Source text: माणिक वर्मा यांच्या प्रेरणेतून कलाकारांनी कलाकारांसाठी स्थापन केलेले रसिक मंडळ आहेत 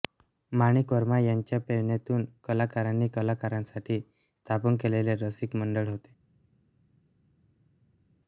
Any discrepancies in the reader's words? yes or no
yes